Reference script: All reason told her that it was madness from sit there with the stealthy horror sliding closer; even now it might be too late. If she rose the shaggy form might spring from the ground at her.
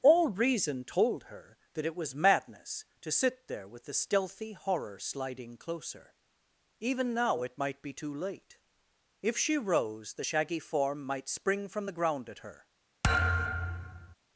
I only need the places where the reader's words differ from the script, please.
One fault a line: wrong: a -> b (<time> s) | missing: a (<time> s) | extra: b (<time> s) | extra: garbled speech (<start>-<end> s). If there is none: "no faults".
wrong: from -> to (3.0 s)